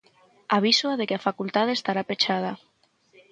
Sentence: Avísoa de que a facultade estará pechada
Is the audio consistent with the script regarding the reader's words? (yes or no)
yes